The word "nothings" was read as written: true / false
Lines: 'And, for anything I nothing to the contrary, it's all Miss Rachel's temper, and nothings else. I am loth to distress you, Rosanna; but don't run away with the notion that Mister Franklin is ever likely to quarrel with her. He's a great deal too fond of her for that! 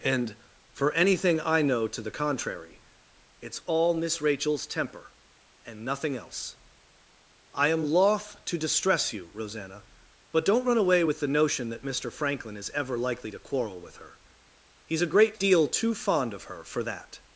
false